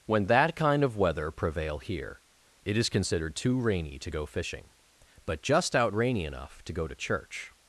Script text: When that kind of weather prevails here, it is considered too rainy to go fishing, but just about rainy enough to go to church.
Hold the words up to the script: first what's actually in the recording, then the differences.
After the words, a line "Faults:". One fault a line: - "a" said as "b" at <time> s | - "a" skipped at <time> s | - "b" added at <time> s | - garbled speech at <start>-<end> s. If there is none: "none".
When that kind of weather prevail here, it is considered too rainy to go fishing, but just out rainy enough to go to church.
Faults:
- "prevails" said as "prevail" at 1.3 s
- "about" said as "out" at 5.8 s